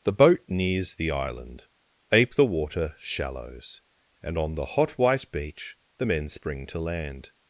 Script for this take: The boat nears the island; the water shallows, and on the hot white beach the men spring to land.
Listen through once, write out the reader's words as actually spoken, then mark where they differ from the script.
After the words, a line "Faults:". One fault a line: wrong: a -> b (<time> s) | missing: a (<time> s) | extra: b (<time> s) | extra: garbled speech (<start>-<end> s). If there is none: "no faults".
The boat nears the island; ape the water shallows, and on the hot white beach the men spring to land.
Faults:
extra: ape (2.1 s)